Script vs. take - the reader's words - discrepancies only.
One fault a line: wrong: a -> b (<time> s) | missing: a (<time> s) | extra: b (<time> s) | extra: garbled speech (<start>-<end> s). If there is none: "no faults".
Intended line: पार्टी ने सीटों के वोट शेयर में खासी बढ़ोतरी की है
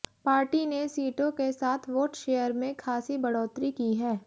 extra: साथ (1.5 s)